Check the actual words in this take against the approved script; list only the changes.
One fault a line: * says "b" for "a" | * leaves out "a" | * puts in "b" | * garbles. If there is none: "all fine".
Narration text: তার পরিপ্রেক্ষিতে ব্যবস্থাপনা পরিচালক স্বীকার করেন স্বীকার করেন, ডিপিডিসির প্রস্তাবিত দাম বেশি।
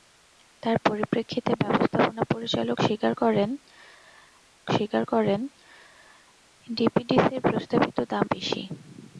all fine